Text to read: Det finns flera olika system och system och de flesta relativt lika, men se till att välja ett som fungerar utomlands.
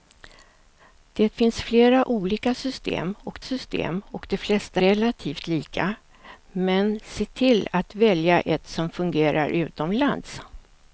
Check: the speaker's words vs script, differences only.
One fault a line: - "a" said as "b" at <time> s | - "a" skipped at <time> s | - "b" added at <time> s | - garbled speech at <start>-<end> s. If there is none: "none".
none